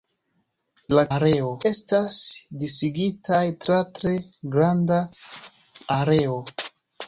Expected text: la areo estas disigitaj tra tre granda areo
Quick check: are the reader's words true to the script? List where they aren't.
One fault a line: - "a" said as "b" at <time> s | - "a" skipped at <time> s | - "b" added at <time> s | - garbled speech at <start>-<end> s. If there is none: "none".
none